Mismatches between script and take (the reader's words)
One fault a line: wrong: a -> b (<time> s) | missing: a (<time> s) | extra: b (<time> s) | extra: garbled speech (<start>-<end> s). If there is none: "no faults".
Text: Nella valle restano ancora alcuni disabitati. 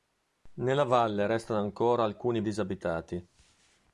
no faults